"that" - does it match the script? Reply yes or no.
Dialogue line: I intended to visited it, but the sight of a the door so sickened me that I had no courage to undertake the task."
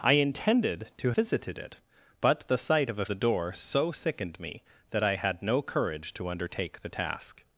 yes